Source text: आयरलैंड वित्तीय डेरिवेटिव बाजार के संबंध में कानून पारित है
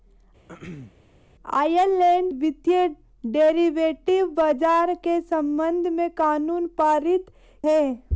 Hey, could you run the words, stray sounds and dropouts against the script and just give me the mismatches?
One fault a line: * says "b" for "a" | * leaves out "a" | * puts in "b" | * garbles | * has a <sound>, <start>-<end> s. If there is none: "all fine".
* has a throat clearing, 0.5-0.9 s